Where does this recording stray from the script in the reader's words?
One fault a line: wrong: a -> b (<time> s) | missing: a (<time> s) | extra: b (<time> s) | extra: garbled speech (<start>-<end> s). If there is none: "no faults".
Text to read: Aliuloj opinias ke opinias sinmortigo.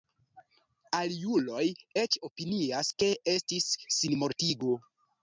extra: eĉ (2.0 s)
wrong: opinias -> estis (3.3 s)